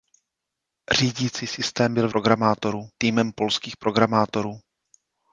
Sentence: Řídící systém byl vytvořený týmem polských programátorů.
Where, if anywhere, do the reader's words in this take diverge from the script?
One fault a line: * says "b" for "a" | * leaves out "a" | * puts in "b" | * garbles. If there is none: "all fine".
* says "programátorů" for "vytvořený"